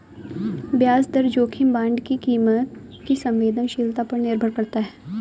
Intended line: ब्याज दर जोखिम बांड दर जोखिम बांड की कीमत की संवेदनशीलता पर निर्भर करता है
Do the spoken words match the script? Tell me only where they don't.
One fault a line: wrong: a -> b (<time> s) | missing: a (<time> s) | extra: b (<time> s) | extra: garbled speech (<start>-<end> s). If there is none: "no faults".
missing: दर जोखिम बांड (2.0 s)